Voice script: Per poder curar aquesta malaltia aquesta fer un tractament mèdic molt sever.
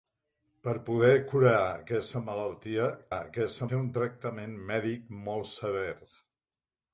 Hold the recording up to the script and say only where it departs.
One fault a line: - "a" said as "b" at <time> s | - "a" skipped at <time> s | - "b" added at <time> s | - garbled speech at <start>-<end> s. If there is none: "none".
none